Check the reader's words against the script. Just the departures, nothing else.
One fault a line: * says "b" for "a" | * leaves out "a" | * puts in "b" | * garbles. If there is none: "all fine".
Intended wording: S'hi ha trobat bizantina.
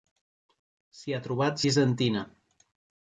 all fine